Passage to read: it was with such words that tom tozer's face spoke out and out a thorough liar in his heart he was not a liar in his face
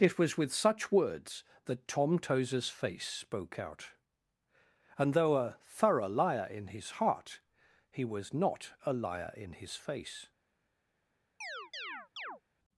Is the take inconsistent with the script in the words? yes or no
yes